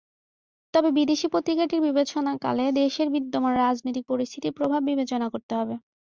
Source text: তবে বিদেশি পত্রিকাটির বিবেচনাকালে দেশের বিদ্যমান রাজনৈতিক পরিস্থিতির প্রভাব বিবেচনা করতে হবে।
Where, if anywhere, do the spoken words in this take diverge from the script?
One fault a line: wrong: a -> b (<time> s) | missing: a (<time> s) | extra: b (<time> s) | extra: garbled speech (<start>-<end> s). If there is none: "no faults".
no faults